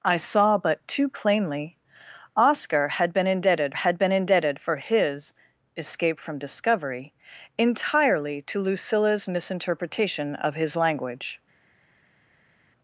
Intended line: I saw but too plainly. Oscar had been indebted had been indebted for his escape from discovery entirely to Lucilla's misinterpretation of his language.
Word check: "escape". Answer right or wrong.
right